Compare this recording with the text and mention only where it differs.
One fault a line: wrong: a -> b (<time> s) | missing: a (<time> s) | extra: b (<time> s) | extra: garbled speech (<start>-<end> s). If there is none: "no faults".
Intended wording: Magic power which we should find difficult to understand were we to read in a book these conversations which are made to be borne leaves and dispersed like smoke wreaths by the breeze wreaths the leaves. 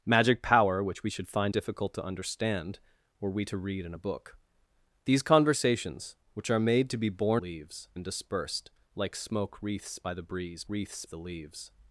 no faults